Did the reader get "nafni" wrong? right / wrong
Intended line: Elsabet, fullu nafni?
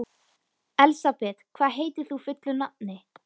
right